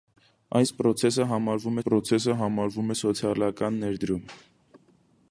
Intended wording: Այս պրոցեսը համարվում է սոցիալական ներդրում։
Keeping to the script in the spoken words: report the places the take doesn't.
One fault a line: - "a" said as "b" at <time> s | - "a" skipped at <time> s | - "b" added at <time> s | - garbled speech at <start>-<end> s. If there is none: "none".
- "պրոցեսը համարվում" added at 1.8 s